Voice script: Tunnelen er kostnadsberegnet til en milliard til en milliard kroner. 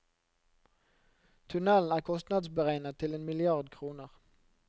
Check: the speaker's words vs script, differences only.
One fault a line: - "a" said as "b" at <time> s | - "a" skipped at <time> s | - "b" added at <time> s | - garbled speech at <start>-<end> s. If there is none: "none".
- "til en milliard" skipped at 3.7 s